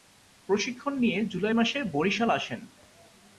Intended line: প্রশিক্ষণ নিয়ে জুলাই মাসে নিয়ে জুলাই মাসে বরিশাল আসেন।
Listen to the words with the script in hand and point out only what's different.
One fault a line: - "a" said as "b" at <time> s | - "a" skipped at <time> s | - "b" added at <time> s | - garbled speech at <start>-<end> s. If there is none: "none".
- "নিয়ে জুলাই মাসে" skipped at 1.8 s